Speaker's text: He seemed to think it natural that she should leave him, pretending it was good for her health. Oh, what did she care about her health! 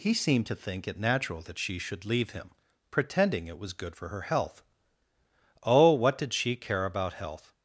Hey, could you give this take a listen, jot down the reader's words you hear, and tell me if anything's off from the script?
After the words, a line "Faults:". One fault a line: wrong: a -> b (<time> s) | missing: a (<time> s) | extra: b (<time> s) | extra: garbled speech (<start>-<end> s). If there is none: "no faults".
He seemed to think it natural that she should leave him, pretending it was good for her health. Oh, what did she care about health!
Faults:
missing: her (7.1 s)